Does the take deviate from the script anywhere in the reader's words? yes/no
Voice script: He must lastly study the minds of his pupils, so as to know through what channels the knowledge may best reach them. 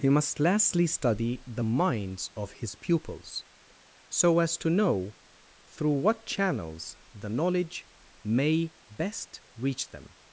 no